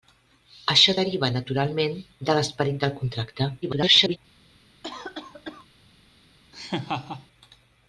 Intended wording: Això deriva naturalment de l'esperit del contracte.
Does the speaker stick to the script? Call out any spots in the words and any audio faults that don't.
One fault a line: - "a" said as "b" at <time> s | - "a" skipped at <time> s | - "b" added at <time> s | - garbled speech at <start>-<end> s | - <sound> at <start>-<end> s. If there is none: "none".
- garbled speech at 3.6-4.2 s
- cough at 4.8-5.7 s
- laugh at 6.5-7.3 s